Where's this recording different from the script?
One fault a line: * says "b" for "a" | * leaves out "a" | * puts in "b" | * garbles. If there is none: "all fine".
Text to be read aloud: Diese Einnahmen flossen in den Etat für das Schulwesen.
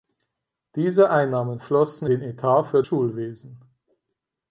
* leaves out "in"
* leaves out "das"